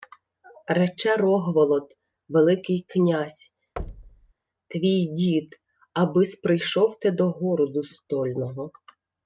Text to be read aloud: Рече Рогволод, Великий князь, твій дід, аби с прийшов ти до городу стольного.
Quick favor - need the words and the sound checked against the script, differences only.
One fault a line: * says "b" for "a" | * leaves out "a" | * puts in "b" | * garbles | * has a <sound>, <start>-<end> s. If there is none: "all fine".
* has a thud, 3.8-4.3 s